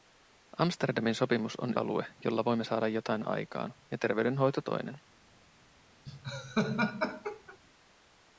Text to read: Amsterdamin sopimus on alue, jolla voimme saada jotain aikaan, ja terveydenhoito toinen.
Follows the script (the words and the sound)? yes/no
no